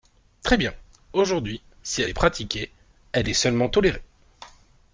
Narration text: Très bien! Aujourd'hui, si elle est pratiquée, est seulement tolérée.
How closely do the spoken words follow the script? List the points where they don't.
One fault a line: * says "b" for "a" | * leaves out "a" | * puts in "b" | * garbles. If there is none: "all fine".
* puts in "elle"